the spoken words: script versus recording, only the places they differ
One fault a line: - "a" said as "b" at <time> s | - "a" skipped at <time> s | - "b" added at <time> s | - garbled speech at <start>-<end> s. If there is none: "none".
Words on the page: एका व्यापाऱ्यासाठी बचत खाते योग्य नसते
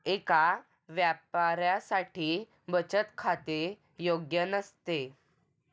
none